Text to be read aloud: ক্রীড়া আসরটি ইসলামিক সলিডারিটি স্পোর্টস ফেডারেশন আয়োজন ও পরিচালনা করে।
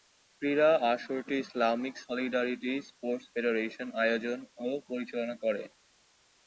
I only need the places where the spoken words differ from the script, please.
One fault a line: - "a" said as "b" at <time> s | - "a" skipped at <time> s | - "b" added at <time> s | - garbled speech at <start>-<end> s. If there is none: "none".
none